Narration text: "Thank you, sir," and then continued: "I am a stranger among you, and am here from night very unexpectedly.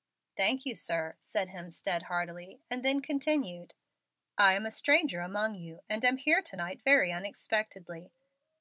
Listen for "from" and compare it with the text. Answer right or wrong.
wrong